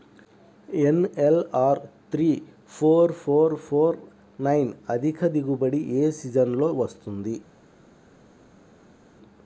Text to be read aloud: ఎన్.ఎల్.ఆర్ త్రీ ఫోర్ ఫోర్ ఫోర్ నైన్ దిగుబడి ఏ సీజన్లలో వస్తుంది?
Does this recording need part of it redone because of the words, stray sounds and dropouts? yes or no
yes